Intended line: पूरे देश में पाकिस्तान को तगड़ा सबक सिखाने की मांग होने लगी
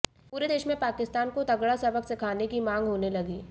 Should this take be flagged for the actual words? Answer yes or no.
no